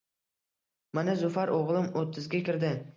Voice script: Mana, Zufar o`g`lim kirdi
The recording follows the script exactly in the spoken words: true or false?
false